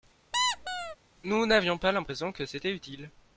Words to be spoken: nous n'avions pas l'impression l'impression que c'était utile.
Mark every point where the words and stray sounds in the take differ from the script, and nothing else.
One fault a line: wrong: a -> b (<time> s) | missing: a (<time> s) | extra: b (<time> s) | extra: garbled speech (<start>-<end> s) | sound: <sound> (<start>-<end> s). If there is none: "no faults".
sound: squeak (0.3-1.0 s)
missing: l'impression (2.3 s)